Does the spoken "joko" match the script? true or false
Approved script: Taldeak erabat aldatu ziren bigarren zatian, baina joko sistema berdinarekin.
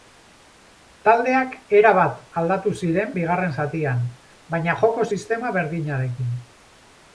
true